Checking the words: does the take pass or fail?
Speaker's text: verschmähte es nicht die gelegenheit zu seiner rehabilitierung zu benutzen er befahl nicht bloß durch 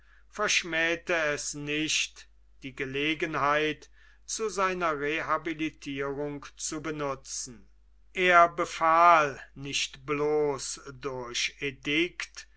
pass